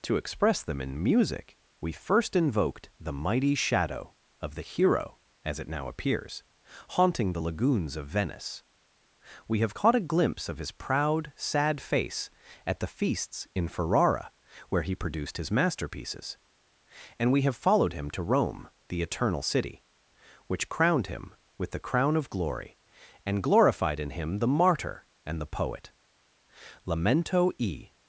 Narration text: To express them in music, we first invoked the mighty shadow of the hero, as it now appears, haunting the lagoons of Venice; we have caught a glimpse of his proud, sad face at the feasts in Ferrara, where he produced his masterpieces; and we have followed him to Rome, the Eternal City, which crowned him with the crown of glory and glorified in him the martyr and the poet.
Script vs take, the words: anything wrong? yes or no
yes